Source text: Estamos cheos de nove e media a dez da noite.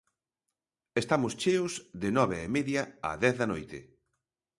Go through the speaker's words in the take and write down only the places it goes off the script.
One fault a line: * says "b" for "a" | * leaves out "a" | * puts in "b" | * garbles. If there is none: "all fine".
all fine